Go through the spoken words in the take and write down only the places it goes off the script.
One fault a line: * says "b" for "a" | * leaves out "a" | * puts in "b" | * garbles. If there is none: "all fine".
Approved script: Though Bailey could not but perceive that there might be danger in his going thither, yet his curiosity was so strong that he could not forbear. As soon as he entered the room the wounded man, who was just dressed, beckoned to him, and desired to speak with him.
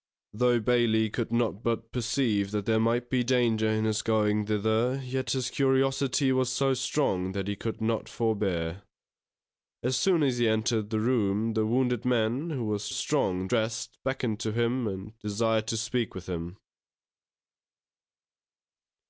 * says "strong" for "just"